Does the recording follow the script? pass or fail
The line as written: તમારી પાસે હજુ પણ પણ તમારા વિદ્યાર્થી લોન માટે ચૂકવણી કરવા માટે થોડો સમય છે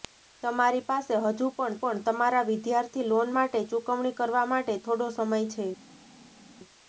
pass